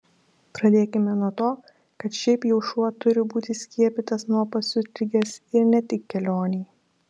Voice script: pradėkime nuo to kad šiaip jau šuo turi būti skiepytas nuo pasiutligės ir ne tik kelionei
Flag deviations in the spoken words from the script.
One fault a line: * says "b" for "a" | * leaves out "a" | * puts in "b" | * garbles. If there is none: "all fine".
all fine